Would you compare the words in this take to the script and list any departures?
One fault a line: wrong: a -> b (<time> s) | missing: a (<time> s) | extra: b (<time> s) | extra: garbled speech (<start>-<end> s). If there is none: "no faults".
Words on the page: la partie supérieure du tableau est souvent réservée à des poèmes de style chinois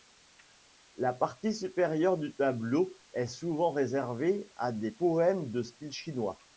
no faults